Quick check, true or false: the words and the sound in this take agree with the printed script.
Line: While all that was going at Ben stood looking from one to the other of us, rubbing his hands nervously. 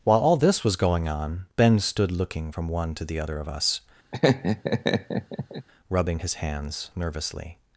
false